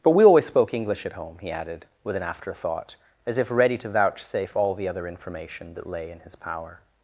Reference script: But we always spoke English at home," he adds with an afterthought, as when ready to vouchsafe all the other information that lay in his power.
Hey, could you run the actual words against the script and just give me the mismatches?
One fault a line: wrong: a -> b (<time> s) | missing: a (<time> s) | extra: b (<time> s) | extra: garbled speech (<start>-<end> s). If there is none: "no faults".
wrong: adds -> added (1.5 s)
wrong: when -> if (3.4 s)